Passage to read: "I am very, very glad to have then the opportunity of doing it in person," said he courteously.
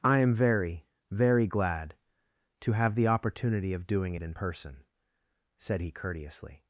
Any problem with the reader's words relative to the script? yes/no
yes